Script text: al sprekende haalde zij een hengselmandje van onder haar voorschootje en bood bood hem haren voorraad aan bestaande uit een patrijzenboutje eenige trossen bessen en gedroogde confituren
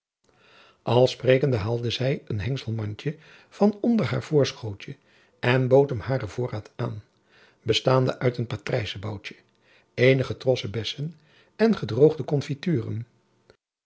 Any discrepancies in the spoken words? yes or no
yes